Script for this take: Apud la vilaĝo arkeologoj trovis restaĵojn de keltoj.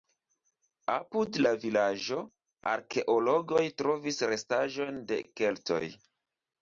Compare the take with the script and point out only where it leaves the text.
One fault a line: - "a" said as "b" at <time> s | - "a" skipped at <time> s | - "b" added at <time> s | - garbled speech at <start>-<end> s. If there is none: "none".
none